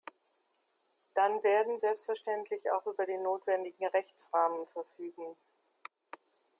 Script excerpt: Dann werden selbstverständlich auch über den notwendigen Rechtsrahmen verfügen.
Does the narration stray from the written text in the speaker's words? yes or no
no